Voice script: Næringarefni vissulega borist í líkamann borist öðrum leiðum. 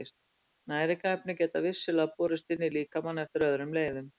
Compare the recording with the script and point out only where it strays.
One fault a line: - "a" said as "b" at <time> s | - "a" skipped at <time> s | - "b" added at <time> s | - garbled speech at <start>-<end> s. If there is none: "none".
- "geta" added at 1.4 s
- "inn" added at 2.5 s
- "borist" said as "eftir" at 3.2 s